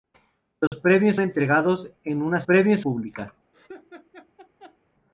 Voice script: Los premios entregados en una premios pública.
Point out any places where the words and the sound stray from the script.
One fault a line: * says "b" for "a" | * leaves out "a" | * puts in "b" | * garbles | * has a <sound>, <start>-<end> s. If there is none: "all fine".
* has a dropout, 0.7-0.7 s
* has a laugh, 3.5-4.8 s